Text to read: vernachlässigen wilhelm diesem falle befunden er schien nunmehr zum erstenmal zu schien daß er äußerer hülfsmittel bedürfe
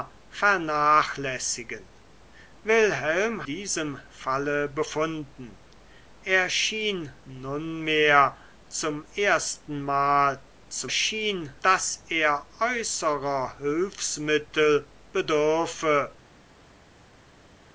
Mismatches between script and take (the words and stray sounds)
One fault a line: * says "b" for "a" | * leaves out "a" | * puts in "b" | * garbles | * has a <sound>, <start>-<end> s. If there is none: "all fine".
all fine